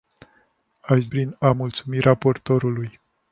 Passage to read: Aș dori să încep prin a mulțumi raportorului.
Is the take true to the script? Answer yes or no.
no